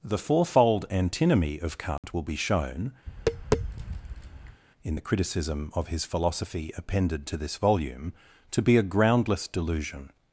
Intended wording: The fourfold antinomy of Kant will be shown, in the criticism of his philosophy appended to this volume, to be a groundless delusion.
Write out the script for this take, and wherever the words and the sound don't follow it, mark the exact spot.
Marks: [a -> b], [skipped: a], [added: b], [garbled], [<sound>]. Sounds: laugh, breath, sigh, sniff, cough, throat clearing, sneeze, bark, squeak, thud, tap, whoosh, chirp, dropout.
The fourfold antinomy of Kant [dropout] will be shown, [tap] in the criticism of his philosophy appended to this volume, to be a groundless delusion.